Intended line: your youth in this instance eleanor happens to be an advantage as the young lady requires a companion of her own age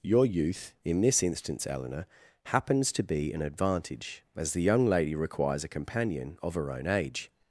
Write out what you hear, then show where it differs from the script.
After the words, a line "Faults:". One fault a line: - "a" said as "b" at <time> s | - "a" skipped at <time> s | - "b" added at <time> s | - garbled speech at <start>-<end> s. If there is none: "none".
your youth in this instance eleanor happens to be an advantage as the young lady requires a companion of her own age
Faults:
none